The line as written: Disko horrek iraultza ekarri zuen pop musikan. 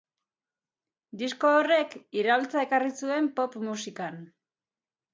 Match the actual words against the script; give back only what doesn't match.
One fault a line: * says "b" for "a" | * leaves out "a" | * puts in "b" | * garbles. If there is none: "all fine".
all fine